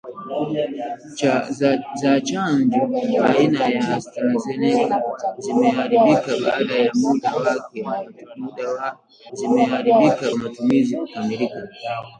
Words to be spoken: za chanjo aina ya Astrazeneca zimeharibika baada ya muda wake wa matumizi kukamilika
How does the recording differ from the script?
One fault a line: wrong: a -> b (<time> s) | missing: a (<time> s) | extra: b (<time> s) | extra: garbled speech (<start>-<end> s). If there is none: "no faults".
wrong: wake -> zimeharibika (9.3 s)